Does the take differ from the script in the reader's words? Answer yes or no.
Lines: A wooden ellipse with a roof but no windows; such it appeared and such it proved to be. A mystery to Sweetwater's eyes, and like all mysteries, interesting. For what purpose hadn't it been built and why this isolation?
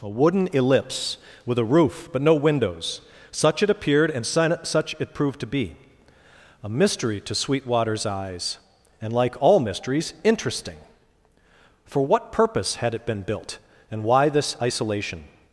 yes